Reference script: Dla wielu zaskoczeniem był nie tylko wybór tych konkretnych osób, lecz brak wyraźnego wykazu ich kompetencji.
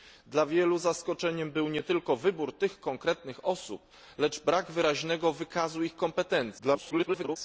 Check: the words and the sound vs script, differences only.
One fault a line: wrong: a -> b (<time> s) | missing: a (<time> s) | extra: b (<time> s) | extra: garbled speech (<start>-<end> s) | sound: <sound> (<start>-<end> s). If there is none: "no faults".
extra: garbled speech (6.6-7.4 s)